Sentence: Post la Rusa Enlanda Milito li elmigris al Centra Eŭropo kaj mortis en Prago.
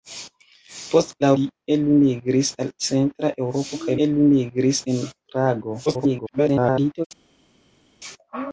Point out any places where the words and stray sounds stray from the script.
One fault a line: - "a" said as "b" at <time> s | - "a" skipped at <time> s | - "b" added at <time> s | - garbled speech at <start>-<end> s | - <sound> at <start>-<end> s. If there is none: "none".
- "Rusa Enlanda Milito" skipped at 1.3 s
- "mortis" said as "elmigris" at 4.1 s
- garbled speech at 5.9-7.1 s